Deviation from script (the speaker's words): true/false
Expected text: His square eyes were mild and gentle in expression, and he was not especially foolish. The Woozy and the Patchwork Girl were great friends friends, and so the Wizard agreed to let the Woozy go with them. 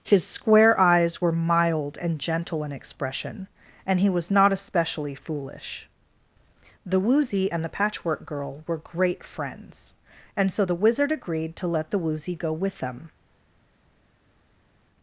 true